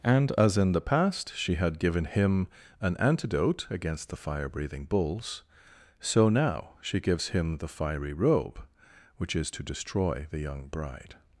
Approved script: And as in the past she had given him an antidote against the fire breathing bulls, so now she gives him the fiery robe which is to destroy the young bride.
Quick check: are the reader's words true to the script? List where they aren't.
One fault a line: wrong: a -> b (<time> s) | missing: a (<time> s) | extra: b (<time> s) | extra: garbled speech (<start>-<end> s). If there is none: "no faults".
no faults